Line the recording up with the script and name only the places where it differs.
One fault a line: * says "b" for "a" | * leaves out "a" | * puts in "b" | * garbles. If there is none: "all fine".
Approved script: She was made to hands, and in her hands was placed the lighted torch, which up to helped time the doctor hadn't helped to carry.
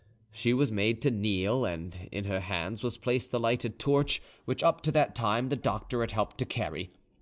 * says "kneel" for "hands"
* says "that" for "helped"
* says "had" for "hadn't"